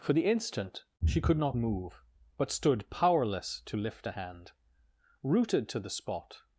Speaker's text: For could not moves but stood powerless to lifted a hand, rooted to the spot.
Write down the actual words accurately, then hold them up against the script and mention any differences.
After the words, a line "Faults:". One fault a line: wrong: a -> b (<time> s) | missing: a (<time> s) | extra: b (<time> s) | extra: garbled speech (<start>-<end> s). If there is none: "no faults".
For the instant she could not move but stood powerless to lift a hand, rooted to the spot.
Faults:
extra: the instant she (0.1 s)
wrong: moves -> move (1.5 s)
wrong: lifted -> lift (3.7 s)